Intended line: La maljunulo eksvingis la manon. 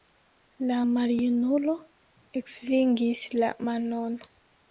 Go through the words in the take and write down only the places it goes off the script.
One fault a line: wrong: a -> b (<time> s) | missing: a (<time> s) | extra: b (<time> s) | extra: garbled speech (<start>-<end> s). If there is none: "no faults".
no faults